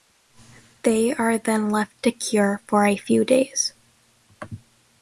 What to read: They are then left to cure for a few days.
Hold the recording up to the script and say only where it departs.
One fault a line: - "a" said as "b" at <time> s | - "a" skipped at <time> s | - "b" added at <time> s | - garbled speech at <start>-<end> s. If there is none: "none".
none